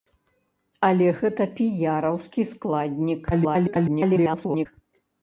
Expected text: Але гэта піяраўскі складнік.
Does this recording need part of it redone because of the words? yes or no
yes